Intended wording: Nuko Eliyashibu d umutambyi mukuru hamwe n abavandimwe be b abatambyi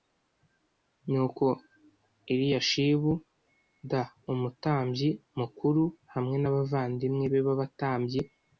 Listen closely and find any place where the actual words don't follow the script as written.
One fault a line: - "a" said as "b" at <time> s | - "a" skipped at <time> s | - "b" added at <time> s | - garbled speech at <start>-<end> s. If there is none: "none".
none